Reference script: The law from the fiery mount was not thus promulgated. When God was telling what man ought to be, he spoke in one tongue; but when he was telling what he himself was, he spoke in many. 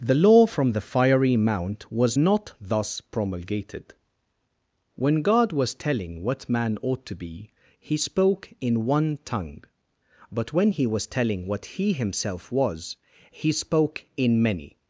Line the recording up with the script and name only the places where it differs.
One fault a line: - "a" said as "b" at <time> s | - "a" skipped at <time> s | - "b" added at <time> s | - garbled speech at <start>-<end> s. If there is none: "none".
none